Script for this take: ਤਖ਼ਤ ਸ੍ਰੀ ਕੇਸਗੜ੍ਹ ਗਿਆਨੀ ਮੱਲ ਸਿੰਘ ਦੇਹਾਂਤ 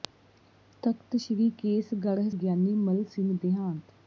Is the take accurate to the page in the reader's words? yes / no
yes